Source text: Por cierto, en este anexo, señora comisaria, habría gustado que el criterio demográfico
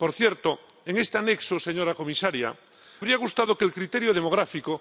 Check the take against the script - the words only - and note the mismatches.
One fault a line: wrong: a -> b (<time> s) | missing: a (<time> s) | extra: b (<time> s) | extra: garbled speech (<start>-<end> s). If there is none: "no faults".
no faults